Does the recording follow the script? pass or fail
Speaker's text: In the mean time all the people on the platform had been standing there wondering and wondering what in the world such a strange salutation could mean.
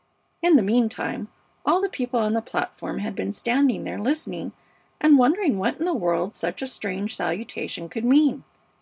fail